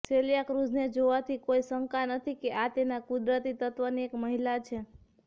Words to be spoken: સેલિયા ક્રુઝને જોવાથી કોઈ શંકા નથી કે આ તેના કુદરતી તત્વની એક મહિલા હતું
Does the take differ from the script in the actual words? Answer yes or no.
yes